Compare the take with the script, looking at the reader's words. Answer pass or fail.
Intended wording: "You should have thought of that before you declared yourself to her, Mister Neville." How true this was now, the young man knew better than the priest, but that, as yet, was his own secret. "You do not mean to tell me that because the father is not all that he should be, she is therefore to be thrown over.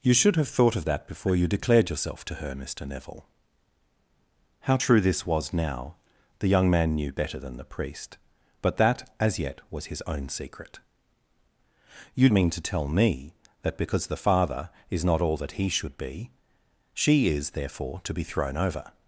fail